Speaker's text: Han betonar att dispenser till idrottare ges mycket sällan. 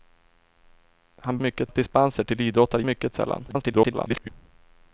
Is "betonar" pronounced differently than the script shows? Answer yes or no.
yes